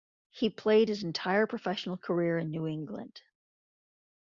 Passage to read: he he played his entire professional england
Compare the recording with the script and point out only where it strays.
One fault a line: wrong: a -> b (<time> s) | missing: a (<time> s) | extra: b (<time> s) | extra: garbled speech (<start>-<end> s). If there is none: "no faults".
missing: he (0.5 s)
extra: career in new (2.0 s)